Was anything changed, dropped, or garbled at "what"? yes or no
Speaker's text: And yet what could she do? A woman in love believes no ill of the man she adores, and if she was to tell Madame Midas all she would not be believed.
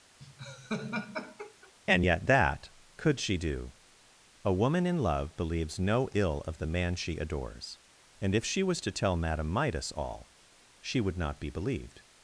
yes